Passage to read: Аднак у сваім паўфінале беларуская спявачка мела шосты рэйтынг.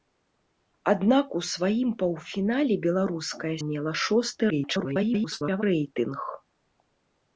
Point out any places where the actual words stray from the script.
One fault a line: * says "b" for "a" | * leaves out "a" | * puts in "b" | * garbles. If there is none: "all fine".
* leaves out "спявачка"
* garbles